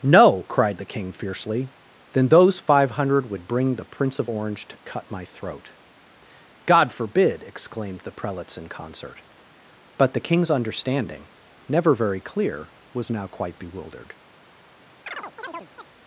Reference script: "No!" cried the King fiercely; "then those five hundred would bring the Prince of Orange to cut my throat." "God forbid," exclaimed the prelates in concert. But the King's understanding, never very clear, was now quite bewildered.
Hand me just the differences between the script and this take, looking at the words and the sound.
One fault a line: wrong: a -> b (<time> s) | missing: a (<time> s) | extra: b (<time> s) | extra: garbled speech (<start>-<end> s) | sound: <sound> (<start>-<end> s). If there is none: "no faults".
sound: chirp (15.1-15.9 s)